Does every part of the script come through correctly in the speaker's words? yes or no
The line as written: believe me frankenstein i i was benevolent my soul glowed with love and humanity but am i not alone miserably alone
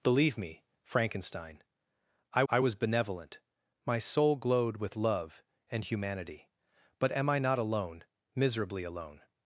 yes